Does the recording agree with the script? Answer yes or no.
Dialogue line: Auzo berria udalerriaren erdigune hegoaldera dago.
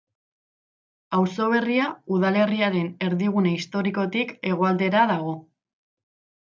no